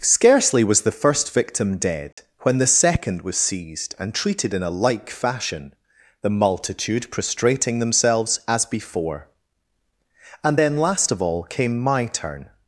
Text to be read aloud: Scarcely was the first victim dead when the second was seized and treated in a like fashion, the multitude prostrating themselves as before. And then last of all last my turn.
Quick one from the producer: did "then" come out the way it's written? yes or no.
yes